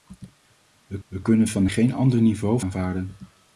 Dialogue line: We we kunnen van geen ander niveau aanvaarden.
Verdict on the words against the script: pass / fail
pass